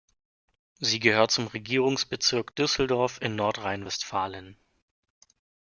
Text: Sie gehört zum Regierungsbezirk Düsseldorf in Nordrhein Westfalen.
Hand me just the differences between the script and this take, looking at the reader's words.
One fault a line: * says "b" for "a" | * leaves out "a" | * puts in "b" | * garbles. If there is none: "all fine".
all fine